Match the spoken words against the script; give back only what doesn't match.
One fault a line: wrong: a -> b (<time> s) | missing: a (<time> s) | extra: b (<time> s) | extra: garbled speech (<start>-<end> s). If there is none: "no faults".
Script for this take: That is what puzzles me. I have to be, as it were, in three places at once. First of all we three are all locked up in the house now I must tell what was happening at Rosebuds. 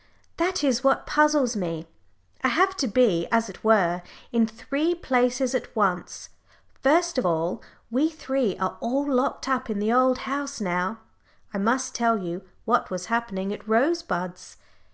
extra: old (9.9 s)
extra: you (12.2 s)